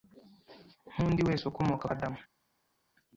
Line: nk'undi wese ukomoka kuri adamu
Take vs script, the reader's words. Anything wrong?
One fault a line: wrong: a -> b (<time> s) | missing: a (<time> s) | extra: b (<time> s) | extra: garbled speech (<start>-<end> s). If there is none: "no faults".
missing: kuri (1.9 s)